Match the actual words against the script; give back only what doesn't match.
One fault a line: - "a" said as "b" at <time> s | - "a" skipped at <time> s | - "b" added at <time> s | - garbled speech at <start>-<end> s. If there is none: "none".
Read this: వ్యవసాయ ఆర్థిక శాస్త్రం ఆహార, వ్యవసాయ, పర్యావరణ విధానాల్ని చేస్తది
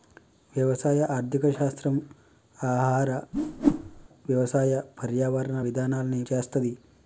none